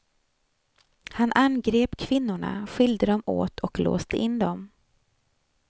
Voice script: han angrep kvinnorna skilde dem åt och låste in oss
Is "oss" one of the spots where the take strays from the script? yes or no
yes